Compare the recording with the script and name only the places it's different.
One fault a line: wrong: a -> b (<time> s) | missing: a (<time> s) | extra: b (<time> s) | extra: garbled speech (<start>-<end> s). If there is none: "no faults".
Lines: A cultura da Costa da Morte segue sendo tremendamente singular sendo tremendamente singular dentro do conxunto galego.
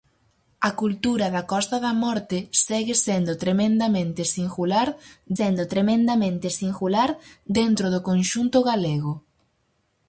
no faults